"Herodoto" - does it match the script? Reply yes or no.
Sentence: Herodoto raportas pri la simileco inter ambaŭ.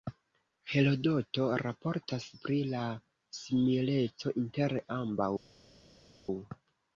yes